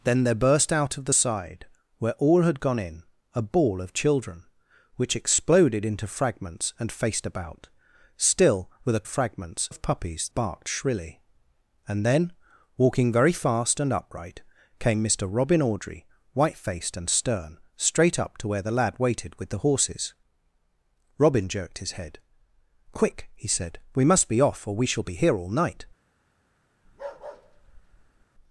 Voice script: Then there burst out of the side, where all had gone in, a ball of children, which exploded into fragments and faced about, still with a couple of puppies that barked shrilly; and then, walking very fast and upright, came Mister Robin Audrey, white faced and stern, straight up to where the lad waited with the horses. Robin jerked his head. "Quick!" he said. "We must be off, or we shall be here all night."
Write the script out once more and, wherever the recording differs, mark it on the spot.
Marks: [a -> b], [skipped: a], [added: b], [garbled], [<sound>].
Then there burst out of the side, where all had gone in, a ball of children, which exploded into fragments and faced about, still with a [couple -> fragments] of puppies [skipped: that] barked shrilly; and then, walking very fast and upright, came Mister Robin Audrey, white faced and stern, straight up to where the lad waited with the horses. Robin jerked his head. "Quick!" he said. "We must be off, or we shall be here all night." [bark]